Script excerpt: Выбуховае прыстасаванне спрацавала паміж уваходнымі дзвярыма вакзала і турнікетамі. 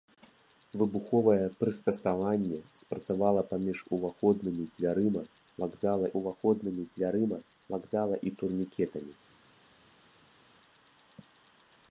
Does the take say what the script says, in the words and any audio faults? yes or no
no